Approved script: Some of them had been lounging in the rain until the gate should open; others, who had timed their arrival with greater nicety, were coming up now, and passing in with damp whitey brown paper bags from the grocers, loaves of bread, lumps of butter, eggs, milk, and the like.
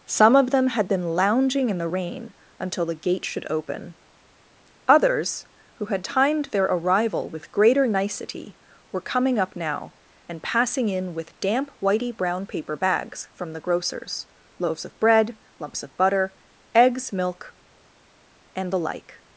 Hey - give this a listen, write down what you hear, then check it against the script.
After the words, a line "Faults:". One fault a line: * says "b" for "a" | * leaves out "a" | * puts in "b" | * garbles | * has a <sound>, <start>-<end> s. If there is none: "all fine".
Some of them had been lounging in the rain until the gate should open; others, who had timed their arrival with greater nicety, were coming up now, and passing in with damp whitey brown paper bags from the grocers, loaves of bread, lumps of butter, eggs, milk, and the like.
Faults:
all fine